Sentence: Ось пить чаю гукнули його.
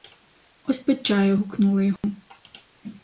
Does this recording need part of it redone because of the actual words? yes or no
no